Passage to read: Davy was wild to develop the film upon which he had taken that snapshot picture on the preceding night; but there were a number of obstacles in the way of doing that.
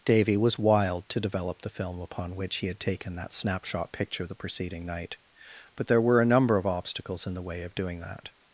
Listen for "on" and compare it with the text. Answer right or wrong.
wrong